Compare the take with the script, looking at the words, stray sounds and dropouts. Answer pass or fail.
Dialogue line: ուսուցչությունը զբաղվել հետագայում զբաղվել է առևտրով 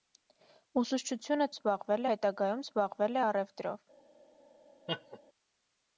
fail